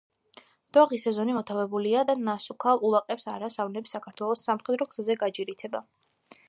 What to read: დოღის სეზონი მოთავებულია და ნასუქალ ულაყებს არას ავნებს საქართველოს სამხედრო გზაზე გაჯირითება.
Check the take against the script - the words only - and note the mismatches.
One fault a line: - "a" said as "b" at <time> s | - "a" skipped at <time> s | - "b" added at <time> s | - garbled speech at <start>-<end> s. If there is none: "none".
none